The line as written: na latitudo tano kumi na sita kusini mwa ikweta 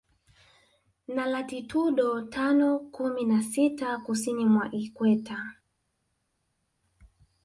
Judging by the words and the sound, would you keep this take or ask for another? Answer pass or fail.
pass